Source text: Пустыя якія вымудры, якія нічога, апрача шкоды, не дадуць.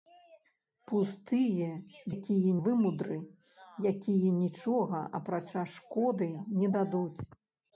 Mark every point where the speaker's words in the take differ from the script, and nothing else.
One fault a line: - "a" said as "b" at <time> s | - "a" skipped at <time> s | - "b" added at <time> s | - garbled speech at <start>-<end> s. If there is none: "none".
none